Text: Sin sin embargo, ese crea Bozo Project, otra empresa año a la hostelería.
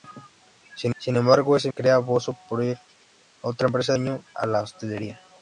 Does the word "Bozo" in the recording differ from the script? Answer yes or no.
no